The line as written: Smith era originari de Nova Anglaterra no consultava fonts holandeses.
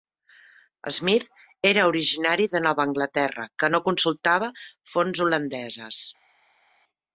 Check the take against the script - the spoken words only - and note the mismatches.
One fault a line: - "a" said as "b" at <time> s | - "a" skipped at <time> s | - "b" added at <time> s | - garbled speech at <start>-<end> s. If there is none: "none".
- "que" added at 3.6 s